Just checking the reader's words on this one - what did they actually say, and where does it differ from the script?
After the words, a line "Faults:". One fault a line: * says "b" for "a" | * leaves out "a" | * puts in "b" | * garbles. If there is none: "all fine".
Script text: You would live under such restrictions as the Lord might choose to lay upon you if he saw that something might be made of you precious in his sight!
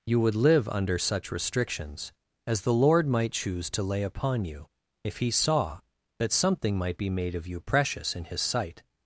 You would live under such restrictions as the Lord might choose to lay upon you if he saw that something might be made of you precious in his sight!
Faults:
all fine